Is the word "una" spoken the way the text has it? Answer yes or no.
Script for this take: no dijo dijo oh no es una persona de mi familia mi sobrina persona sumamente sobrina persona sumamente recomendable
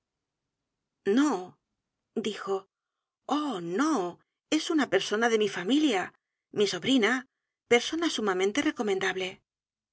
yes